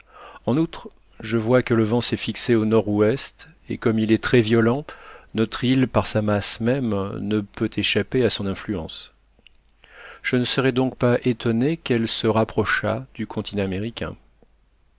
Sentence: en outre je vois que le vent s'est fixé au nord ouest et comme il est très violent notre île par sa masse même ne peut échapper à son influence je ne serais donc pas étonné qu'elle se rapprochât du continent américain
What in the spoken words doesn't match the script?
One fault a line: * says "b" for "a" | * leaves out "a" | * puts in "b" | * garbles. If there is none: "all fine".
all fine